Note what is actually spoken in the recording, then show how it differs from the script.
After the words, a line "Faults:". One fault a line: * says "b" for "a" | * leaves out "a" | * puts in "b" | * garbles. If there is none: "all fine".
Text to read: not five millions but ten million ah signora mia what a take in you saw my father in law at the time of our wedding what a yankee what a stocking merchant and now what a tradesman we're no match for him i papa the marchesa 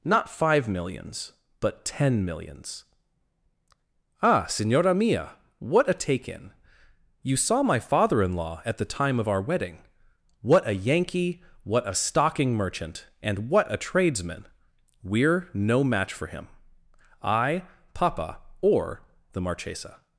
not five millions but ten millions ah signora mia what a take in you saw my father in law at the time of our wedding what a yankee what a stocking merchant and what a tradesman we're no match for him i papa or the marchesa
Faults:
* says "millions" for "million"
* leaves out "now"
* puts in "or"